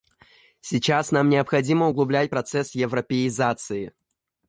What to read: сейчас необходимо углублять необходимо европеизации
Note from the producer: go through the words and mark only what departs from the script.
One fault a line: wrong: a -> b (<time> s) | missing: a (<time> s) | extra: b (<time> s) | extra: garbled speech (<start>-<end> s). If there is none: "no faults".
extra: нам (1.1 s)
wrong: необходимо -> процесс (2.3 s)